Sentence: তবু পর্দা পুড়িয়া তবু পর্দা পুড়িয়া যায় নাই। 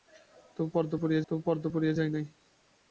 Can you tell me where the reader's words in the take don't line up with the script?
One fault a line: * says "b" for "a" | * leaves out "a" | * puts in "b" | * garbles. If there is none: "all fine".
all fine